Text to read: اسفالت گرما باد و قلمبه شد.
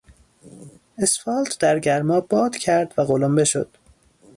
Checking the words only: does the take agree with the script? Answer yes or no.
no